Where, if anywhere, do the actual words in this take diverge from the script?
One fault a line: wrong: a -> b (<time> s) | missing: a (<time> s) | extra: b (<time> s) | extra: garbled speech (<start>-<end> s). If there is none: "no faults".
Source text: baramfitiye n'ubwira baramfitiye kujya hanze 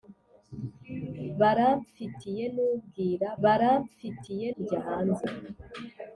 no faults